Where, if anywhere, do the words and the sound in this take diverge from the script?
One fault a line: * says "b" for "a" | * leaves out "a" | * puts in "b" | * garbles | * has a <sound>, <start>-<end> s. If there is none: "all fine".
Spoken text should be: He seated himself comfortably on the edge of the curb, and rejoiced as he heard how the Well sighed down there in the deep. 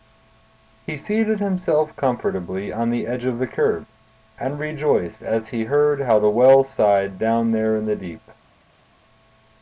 all fine